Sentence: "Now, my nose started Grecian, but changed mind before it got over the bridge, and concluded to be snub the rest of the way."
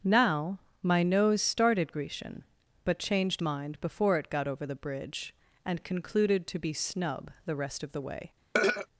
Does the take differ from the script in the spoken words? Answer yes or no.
no